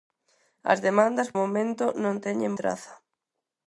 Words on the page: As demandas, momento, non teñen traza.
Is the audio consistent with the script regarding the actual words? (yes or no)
yes